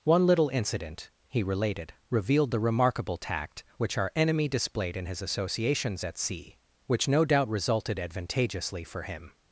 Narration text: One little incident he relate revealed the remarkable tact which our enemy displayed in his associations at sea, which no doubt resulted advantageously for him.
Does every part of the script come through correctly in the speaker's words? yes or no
no